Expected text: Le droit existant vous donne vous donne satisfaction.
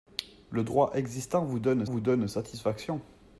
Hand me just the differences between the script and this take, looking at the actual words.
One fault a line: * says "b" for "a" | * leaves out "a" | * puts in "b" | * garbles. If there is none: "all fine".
all fine